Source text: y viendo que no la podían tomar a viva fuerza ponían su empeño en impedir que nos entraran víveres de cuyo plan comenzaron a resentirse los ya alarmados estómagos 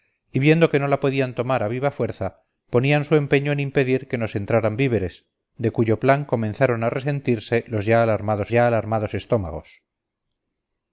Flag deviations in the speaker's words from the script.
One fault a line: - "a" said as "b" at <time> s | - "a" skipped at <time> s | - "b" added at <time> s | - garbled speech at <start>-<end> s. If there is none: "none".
- "ya alarmados" added at 8.5 s